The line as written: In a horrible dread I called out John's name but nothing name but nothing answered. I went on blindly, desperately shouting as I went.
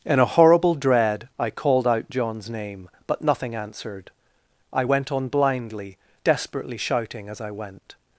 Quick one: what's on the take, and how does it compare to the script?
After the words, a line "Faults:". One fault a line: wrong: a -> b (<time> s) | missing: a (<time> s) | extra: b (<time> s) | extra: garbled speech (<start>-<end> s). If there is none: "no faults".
In a horrible dread I called out John's name but nothing answered. I went on blindly, desperately shouting as I went.
Faults:
missing: name but nothing (3.5 s)